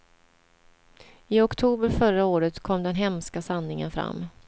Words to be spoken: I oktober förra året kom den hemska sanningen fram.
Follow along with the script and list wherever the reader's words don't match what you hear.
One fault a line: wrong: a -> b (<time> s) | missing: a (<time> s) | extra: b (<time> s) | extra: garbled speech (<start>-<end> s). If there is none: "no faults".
no faults